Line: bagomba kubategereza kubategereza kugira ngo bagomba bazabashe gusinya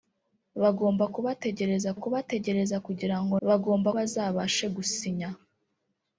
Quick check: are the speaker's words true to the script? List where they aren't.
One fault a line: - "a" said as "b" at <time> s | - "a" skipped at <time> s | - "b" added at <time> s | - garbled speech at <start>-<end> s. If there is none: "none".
none